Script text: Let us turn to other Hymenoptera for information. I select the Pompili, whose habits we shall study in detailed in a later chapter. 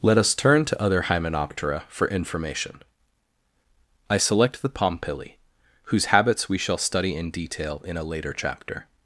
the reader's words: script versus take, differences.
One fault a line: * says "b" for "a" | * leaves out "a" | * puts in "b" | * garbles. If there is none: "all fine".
* says "detail" for "detailed"